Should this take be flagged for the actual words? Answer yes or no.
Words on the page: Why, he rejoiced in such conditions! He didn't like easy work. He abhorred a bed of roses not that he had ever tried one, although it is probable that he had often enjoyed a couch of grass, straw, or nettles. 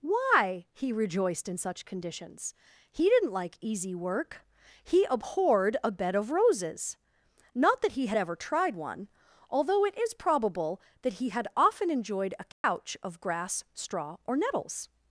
no